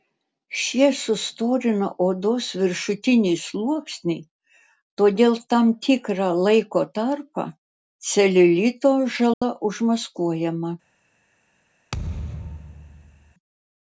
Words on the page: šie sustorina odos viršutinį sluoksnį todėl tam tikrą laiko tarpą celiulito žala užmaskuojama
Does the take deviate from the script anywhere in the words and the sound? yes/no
yes